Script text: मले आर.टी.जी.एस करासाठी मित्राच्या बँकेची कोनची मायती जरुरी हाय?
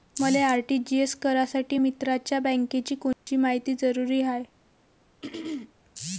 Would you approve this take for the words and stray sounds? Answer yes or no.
no